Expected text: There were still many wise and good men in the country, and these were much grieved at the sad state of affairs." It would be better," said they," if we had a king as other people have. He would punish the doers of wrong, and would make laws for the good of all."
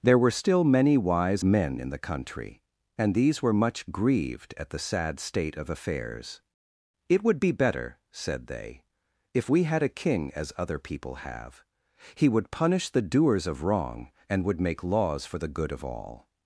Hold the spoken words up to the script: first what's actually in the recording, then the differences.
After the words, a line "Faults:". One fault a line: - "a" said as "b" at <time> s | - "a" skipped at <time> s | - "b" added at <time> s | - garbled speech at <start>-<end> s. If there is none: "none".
There were still many wise men in the country, and these were much grieved at the sad state of affairs." It would be better," said they," if we had a king as other people have. He would punish the doers of wrong, and would make laws for the good of all."
Faults:
- "and good" skipped at 1.4 s